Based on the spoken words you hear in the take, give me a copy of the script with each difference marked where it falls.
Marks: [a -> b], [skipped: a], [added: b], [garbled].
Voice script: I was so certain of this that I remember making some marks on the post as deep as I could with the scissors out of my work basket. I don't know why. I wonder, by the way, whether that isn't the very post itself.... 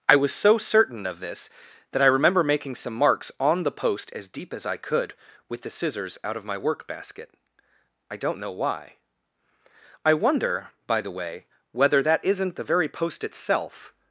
I was so certain of this that I remember making some marks on the post as deep as I could with the scissors out of my work basket. I don't know why. I wonder, by the way, whether that isn't the very post itself....